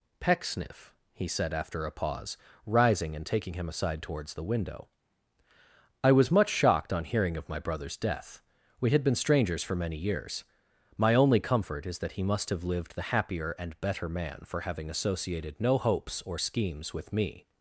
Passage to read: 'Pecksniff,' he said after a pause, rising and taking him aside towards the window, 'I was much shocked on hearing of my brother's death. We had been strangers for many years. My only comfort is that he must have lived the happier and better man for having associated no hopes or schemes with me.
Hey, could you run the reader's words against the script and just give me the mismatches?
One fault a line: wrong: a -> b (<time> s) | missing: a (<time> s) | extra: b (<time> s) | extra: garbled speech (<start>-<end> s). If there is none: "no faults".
no faults